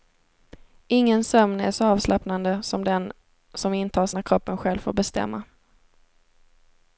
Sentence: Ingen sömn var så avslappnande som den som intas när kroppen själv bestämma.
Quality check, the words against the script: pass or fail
fail